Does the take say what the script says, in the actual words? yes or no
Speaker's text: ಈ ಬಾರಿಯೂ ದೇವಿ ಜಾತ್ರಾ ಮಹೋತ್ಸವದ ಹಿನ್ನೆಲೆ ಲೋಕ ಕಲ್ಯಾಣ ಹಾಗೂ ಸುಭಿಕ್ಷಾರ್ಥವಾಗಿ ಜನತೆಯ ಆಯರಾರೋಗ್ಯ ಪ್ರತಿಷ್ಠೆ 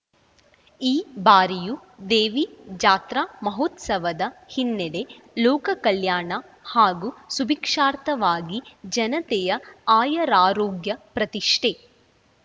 yes